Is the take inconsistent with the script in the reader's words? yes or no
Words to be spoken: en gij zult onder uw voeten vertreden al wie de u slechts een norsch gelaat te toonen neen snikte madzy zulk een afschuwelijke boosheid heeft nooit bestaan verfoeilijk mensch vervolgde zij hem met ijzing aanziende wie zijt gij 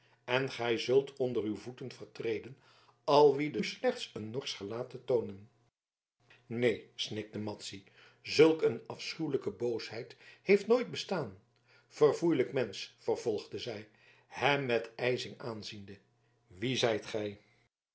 no